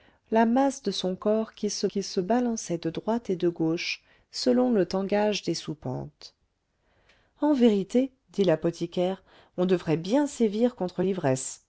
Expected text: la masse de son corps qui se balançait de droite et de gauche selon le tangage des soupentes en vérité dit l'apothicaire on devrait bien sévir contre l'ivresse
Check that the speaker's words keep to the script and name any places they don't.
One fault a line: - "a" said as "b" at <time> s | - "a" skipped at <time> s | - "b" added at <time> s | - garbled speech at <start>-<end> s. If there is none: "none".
- "qui se" added at 1.9 s